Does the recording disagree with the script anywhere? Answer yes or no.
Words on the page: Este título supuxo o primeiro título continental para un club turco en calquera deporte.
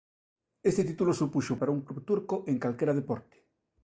yes